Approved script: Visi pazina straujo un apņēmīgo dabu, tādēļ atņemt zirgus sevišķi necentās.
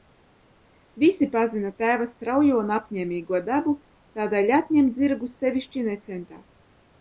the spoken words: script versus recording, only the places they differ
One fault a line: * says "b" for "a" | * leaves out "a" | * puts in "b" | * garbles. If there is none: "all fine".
* puts in "tēva"